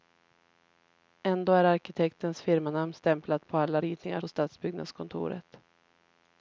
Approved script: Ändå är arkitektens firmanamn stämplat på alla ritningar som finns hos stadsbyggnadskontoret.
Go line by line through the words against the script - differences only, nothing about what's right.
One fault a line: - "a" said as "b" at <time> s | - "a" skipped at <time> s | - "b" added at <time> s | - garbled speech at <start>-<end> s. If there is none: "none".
- "som finns" skipped at 4.2 s